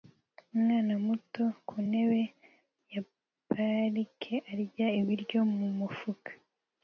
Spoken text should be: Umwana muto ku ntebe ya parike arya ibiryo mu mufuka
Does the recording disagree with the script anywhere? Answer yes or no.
no